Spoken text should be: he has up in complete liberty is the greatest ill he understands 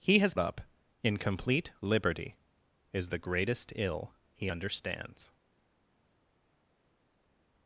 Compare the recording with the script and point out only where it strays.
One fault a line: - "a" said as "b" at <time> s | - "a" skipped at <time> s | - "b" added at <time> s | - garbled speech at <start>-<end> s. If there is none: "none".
none